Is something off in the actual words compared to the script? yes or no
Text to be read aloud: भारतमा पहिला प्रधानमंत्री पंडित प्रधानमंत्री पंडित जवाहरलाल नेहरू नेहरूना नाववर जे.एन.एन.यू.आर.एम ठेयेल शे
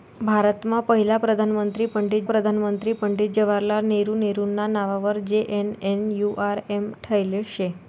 no